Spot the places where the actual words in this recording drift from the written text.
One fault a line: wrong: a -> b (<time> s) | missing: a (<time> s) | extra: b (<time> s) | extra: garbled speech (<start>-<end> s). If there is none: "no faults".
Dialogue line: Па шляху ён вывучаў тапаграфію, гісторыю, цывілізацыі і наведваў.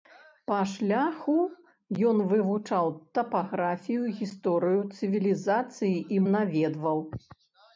no faults